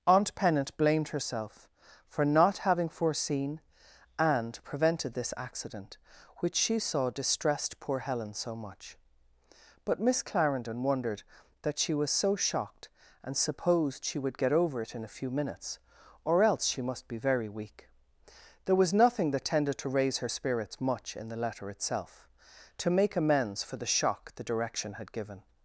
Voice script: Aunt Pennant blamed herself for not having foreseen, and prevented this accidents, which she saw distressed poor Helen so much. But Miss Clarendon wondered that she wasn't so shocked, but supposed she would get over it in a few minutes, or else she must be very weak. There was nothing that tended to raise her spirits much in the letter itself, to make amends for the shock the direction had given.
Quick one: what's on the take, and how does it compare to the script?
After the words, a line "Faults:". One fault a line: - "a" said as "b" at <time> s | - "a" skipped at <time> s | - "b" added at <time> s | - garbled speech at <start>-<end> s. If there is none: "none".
Aunt Pennant blamed herself for not having foreseen, and prevented this accident, which she saw distressed poor Helen so much. But Miss Clarendon wondered that she was so shocked, and supposed she would get over it in a few minutes, or else she must be very weak. There was nothing that tended to raise her spirits much in the letter itself, to make amends for the shock the direction had given.
Faults:
- "accidents" said as "accident" at 5.4 s
- "wasn't" said as "was" at 11.9 s
- "but" said as "and" at 13.2 s